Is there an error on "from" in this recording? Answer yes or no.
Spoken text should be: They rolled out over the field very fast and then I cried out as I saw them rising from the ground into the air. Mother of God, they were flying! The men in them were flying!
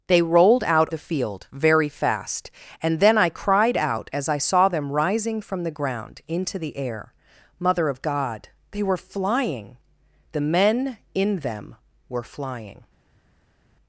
no